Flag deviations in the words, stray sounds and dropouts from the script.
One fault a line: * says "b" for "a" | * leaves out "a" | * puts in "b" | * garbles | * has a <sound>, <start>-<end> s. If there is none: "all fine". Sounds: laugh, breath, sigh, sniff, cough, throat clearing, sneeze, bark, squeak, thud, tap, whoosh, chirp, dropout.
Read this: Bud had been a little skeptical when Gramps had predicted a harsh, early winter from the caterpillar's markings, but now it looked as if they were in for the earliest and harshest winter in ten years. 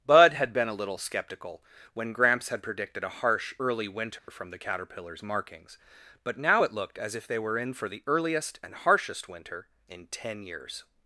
* has a dropout, 4.2-4.3 s